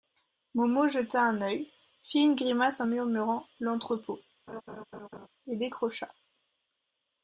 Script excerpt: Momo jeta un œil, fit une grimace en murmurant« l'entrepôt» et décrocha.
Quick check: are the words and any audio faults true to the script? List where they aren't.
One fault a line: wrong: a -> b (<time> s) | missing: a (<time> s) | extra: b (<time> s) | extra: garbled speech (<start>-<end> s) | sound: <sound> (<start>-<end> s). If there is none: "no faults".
sound: laugh (4.5-5.3 s)